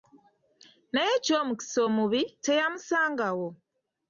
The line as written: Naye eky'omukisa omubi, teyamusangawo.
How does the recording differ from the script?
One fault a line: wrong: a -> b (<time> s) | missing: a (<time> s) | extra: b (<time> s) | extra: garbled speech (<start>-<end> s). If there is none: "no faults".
no faults